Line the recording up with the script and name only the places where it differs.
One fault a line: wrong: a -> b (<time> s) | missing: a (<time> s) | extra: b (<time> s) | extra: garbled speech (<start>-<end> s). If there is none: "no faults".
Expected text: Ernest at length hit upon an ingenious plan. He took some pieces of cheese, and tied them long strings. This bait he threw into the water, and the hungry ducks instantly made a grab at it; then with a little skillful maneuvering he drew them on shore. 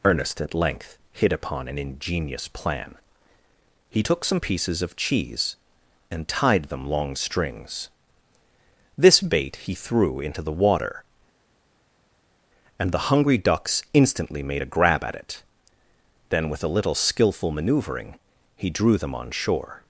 no faults